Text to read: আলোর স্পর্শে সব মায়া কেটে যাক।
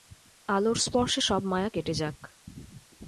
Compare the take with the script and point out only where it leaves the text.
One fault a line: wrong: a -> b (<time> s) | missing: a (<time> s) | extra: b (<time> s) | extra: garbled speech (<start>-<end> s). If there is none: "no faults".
no faults